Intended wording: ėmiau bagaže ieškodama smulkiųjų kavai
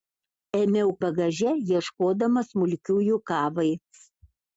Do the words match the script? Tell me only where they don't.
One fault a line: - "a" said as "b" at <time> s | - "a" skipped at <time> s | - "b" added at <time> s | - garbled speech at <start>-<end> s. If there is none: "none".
none